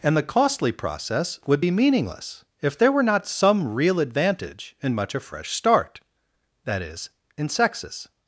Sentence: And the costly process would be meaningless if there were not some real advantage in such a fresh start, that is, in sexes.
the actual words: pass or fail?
fail